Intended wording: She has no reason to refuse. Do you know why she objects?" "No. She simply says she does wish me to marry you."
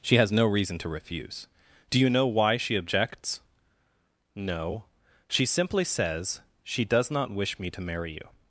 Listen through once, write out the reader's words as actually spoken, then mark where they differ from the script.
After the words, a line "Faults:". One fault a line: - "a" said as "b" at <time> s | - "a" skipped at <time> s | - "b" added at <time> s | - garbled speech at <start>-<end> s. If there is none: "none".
She has no reason to refuse. Do you know why she objects?" "No. She simply says she does not wish me to marry you."
Faults:
- "not" added at 7.1 s